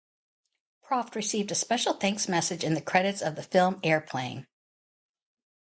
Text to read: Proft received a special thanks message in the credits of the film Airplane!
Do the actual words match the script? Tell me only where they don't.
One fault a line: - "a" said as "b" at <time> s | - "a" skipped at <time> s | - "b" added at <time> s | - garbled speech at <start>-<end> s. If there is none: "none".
none